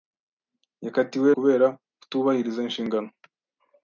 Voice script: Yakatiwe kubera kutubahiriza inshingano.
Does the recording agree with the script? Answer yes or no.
yes